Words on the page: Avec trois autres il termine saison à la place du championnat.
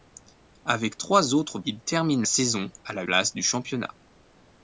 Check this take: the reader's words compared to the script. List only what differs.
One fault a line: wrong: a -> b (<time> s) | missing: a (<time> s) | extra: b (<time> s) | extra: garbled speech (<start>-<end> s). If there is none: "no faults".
no faults